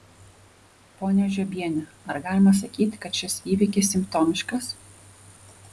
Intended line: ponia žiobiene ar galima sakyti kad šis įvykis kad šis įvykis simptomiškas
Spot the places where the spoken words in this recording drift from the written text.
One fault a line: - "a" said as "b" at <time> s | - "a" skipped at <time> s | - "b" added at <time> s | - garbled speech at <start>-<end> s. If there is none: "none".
- "kad šis įvykis" skipped at 4.0 s